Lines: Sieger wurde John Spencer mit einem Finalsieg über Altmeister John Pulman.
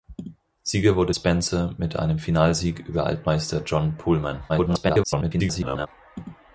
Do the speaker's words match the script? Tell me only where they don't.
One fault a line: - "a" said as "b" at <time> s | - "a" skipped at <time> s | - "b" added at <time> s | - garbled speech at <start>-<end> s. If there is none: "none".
- "John" skipped at 1.1 s
- garbled speech at 4.5-5.9 s